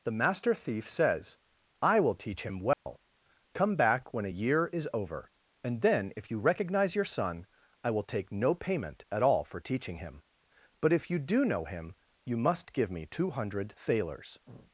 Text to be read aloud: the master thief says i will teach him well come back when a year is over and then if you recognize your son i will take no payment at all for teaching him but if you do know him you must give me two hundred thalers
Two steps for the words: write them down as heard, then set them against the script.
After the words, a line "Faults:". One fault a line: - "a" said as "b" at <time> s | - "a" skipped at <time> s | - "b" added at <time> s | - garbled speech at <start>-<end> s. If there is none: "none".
the master thief says i will teach him well come back when a year is over and then if you recognize your son i will take no payment at all for teaching him but if you do know him you must give me two hundred thalers
Faults:
none